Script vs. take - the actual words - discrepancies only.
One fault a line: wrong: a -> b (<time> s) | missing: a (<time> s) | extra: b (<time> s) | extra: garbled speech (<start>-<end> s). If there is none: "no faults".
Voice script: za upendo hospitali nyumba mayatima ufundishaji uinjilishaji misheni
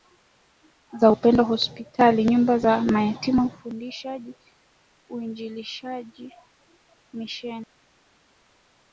extra: za (2.6 s)